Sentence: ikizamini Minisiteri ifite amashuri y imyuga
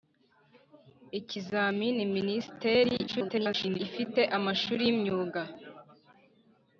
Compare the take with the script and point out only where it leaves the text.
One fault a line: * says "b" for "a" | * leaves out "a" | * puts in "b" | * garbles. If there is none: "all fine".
* garbles